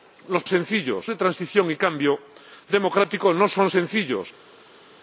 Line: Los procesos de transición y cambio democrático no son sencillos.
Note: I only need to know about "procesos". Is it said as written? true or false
false